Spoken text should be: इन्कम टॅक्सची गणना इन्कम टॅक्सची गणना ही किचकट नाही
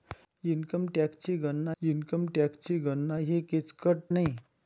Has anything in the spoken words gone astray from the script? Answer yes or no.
no